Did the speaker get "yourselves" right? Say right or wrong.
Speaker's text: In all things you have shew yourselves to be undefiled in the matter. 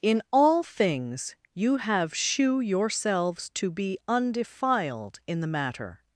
right